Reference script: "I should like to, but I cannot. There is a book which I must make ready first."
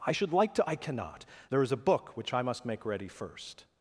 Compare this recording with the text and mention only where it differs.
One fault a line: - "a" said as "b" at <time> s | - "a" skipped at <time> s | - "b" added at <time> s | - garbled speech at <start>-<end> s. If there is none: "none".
- "but" skipped at 0.7 s